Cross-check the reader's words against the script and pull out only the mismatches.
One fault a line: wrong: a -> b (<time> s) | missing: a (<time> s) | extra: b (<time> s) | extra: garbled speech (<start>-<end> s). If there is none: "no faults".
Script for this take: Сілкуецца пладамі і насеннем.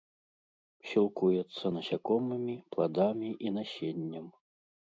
extra: насякомымі (1.7 s)